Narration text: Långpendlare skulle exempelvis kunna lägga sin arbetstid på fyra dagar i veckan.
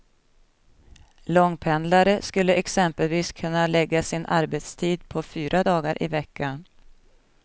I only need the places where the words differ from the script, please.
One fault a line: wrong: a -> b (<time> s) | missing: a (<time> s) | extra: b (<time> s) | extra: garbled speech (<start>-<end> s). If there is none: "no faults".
no faults